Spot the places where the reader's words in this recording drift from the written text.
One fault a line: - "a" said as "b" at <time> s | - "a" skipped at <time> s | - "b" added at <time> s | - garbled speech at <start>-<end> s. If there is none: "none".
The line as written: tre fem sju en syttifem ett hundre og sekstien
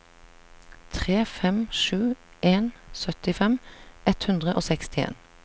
none